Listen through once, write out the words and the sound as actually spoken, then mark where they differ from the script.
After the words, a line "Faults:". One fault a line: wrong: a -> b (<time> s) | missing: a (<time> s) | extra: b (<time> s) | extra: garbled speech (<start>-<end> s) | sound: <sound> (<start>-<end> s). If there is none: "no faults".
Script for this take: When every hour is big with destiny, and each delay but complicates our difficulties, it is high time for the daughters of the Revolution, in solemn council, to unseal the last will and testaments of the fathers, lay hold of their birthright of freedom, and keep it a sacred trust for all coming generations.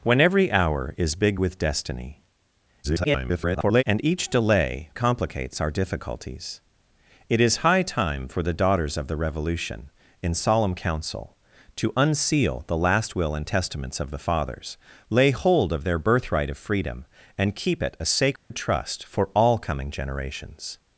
When every hour is big with destiny, [garbled] and each delay complicates our difficulties, it is high time for the daughters of the Revolution, in solemn council, to unseal the last will and testaments of the fathers, lay hold of their birthright of freedom, and keep it a sacred trust for all coming generations.
Faults:
extra: garbled speech (2.8-3.8 s)
missing: but (4.9 s)
sound: dropout (18.4-18.5 s)